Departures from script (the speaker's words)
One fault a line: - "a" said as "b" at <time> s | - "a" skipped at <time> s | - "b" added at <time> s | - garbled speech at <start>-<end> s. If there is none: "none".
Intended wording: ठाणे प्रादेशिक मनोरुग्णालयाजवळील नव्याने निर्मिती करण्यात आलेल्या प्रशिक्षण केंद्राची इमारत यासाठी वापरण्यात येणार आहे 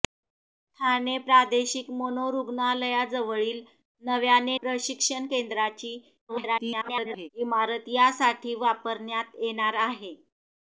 - "निर्मिती करण्यात आलेल्या" skipped at 4.6 s
- garbled speech at 6.3-7.3 s